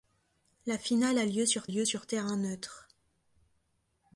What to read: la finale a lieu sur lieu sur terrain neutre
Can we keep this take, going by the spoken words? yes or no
yes